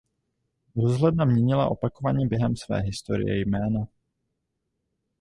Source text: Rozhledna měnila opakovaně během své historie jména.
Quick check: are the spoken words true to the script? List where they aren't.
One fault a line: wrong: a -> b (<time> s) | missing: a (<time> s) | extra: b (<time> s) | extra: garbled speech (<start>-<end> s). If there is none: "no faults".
no faults